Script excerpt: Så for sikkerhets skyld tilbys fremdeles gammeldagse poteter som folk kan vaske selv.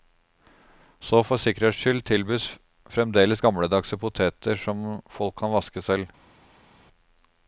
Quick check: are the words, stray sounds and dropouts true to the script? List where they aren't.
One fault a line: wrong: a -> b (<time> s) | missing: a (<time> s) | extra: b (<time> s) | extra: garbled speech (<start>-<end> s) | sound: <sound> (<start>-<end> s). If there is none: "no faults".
no faults